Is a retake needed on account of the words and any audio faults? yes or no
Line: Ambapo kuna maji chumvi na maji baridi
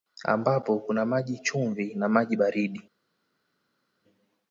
no